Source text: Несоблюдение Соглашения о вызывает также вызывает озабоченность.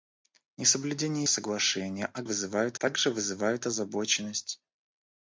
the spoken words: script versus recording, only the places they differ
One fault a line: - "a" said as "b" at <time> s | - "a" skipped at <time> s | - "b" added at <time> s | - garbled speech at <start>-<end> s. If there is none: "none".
none